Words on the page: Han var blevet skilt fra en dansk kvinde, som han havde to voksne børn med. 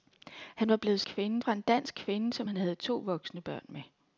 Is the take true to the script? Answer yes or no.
no